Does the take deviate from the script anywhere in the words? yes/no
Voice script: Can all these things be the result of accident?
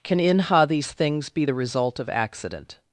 yes